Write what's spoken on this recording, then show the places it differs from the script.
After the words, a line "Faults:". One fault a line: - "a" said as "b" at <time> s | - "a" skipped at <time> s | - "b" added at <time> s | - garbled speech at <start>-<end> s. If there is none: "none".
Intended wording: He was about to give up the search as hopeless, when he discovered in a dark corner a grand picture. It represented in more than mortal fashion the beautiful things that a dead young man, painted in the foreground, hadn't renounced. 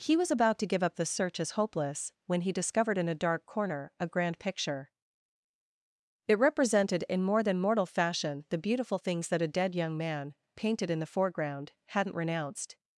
He was about to give up the search as hopeless, when he discovered in a dark corner a grand picture. It represented in more than mortal fashion the beautiful things that a dead young man, painted in the foreground, hadn't renounced.
Faults:
none